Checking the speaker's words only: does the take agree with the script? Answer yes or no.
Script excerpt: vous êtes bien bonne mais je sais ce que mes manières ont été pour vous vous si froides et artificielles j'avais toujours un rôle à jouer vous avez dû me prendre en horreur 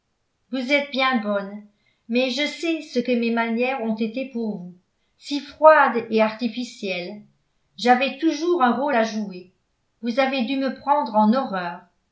no